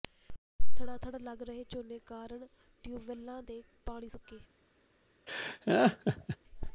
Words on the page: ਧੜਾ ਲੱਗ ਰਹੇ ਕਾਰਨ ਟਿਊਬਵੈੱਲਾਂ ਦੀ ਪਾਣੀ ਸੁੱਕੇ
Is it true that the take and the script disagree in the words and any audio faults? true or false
true